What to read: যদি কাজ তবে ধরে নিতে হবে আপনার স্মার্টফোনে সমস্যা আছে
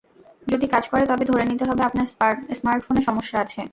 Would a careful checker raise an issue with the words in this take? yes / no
yes